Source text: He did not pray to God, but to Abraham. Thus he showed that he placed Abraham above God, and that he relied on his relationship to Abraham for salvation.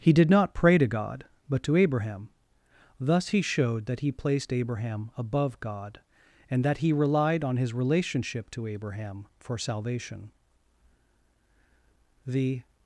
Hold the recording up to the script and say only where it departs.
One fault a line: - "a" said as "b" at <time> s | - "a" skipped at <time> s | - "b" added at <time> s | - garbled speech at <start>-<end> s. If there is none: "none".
- "The" added at 12.2 s